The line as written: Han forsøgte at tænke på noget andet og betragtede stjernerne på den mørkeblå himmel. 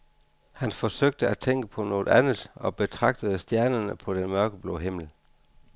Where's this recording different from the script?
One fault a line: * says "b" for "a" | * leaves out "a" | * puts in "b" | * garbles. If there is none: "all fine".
all fine